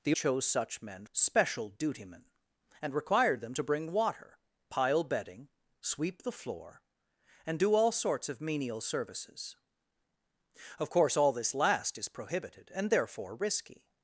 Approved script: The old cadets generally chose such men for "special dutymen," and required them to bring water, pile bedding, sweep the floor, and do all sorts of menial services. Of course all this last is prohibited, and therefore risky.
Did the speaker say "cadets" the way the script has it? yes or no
no